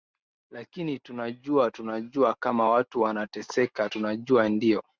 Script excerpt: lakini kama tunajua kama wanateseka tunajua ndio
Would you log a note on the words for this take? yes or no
yes